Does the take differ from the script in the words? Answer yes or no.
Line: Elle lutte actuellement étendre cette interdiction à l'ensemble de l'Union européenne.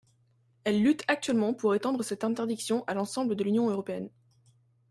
yes